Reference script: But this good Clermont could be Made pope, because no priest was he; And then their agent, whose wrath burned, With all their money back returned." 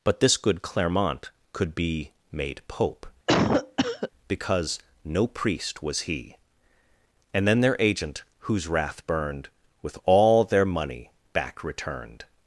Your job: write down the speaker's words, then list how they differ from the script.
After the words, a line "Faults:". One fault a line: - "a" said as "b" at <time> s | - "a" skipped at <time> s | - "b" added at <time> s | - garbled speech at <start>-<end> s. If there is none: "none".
But this good Clermont could be Made pope, because no priest was he; And then their agent, whose wrath burned, With all their money back returned."
Faults:
none